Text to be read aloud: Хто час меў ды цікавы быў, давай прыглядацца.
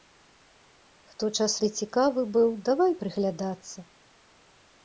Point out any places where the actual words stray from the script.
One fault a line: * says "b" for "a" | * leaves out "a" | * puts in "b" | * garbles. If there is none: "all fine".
* leaves out "меў"